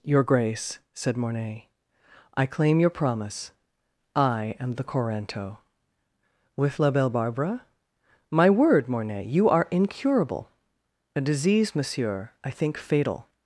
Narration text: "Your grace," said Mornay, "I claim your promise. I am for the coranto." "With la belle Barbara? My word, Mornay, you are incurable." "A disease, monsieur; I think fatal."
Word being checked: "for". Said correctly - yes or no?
no